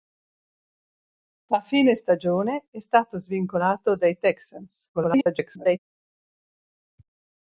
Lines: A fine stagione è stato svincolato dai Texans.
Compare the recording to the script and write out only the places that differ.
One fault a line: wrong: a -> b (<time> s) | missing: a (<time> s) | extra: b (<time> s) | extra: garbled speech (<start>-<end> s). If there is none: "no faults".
extra: garbled speech (4.9-5.8 s)